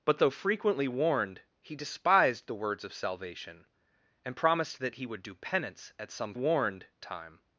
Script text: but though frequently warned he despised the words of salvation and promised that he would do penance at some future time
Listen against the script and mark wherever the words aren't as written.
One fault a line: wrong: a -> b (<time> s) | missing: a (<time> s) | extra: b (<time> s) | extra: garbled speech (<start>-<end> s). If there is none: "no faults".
wrong: future -> warned (6.3 s)